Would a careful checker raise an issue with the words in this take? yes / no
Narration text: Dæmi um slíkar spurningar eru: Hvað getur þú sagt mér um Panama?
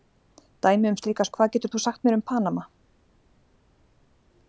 yes